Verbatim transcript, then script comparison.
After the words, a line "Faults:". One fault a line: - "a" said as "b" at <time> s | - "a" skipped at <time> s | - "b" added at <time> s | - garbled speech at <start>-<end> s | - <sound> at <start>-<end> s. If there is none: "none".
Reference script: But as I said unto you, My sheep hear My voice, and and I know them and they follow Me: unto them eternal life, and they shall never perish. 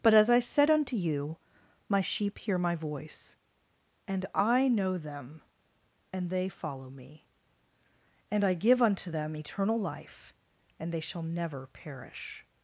But as I said unto you, My sheep hear My voice, and I know them and they follow Me: and I give unto them eternal life, and they shall never perish.
Faults:
- "and" skipped at 4.2 s
- "and I give" added at 8.3 s